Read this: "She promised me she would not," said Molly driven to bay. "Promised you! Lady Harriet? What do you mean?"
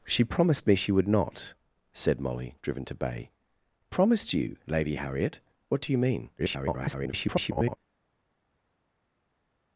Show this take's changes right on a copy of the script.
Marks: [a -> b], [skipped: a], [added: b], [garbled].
"She promised me she would not," said Molly driven to bay. "Promised you! Lady Harriet? What do you mean?" [garbled]